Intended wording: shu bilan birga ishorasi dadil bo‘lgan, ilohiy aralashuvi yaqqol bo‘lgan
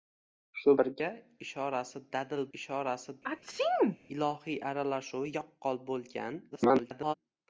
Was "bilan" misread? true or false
true